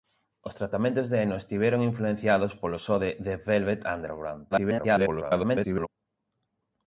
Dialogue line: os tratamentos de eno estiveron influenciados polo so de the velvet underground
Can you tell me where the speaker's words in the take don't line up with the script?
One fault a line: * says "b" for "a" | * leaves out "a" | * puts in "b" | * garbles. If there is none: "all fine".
* garbles